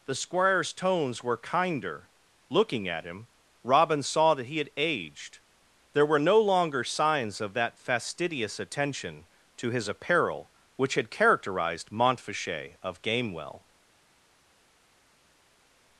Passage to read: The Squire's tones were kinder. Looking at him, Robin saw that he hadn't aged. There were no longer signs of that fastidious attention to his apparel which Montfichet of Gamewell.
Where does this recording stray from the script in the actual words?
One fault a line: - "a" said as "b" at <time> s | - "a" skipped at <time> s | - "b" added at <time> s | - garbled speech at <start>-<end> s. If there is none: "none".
- "hadn't" said as "had" at 4.6 s
- "had characterized" added at 10.9 s